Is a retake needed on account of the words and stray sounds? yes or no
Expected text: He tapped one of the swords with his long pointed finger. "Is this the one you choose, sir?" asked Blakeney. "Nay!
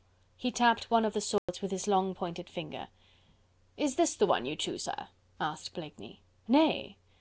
yes